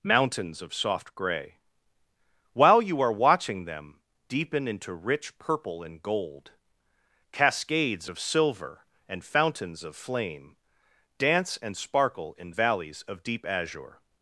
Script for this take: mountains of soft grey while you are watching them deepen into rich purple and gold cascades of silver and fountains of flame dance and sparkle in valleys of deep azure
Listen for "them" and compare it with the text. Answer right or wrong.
right